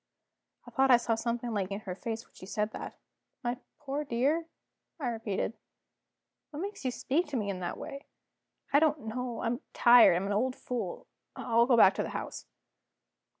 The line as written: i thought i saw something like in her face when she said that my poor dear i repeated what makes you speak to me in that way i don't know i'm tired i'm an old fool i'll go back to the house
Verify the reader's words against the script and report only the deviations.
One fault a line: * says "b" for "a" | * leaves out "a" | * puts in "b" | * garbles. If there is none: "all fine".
all fine